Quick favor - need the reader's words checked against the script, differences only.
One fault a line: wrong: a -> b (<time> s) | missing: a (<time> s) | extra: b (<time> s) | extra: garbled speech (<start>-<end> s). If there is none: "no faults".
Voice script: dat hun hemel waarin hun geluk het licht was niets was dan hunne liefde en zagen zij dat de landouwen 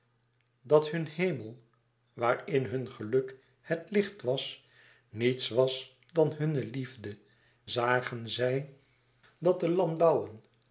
missing: en (7.2 s)